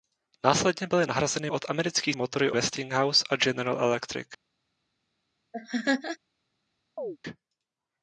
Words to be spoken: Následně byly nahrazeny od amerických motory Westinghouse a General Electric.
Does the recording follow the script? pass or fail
pass